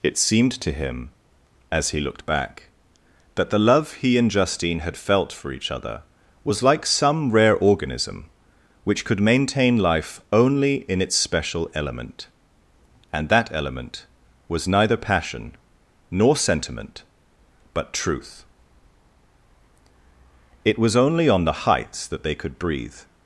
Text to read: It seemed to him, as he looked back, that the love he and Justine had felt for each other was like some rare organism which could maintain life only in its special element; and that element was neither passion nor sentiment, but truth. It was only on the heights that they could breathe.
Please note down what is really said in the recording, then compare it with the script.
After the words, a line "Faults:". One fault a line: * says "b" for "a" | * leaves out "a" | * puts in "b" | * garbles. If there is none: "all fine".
It seemed to him, as he looked back, that the love he and Justine had felt for each other was like some rare organism which could maintain life only in its special element; and that element was neither passion nor sentiment, but truth. It was only on the heights that they could breathe.
Faults:
all fine